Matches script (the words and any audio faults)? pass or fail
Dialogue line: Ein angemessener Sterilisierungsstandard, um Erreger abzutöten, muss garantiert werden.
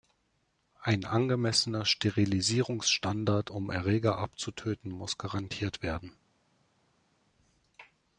pass